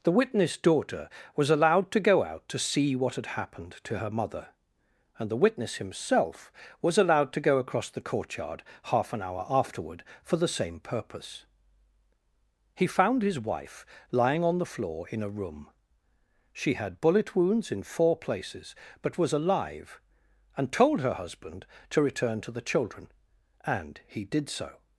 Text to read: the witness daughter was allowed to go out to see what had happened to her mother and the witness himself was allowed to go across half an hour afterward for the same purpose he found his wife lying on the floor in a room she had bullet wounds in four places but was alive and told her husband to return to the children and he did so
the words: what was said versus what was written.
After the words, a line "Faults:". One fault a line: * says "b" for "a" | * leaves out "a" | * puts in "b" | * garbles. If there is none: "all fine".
the witness daughter was allowed to go out to see what had happened to her mother and the witness himself was allowed to go across the courtyard half an hour afterward for the same purpose he found his wife lying on the floor in a room she had bullet wounds in four places but was alive and told her husband to return to the children and he did so
Faults:
* puts in "the courtyard"